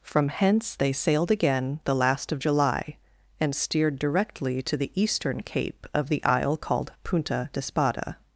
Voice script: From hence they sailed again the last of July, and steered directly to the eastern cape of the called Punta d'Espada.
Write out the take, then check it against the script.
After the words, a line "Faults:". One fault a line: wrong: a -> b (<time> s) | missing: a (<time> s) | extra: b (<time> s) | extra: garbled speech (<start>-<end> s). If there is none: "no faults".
From hence they sailed again the last of July, and steered directly to the eastern cape of the isle called Punta d'Espada.
Faults:
extra: isle (6.2 s)